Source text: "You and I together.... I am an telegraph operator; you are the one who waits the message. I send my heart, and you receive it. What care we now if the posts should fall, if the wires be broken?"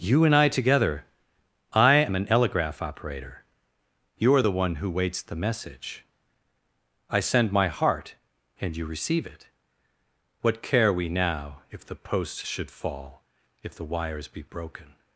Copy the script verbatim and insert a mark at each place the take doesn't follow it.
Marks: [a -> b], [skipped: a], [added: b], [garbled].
"You and I together.... I am an telegraph operator; you are the one who waits the message. I send my heart, and you receive it. What care we now if the posts should fall, if the wires be broken?"